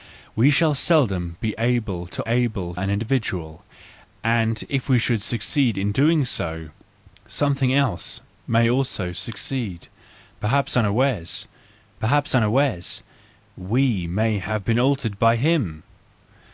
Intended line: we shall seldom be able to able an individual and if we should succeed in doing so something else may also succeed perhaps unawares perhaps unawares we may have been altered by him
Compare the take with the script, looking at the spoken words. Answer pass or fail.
pass